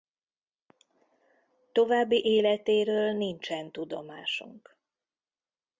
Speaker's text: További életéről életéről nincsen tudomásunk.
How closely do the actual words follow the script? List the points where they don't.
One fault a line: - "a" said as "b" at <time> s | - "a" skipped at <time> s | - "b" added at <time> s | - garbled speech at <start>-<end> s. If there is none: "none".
- "életéről" skipped at 3.1 s